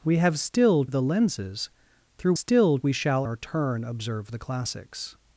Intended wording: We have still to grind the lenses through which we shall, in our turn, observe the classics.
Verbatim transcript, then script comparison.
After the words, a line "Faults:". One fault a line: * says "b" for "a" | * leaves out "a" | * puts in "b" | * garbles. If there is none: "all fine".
We have still the lenses through still we shall, our turn, observe the classics.
Faults:
* leaves out "to grind"
* says "still" for "which"
* leaves out "in"